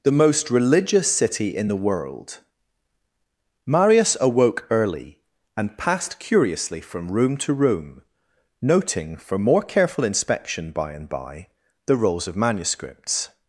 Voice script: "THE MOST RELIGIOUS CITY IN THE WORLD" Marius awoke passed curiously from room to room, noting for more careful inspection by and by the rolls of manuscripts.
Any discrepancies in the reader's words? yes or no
yes